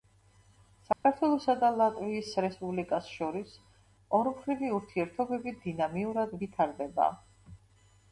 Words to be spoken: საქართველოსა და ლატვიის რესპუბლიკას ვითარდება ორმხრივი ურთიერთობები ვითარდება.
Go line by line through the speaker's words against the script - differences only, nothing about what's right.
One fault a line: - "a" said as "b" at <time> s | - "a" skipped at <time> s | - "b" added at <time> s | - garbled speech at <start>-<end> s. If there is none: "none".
- "ვითარდება" said as "შორის" at 3.2 s
- "დინამიურად" added at 5.7 s